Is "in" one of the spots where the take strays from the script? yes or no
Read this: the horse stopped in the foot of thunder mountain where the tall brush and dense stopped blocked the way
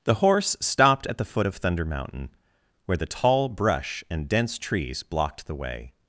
yes